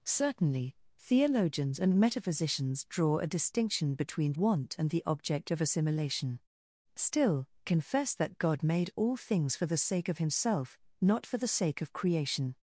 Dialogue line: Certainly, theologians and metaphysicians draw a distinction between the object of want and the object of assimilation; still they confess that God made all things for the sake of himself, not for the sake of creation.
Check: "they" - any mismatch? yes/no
yes